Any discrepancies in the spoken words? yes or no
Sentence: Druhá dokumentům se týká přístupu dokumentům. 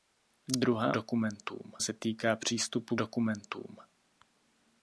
no